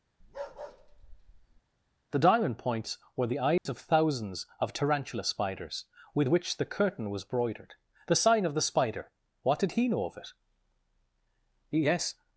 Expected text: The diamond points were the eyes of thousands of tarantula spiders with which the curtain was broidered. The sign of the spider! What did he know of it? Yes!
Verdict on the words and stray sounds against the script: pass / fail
fail